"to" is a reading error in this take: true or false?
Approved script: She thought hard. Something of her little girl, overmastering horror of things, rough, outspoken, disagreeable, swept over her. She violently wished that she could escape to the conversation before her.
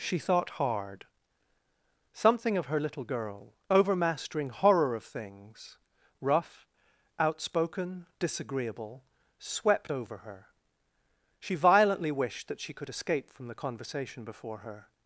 true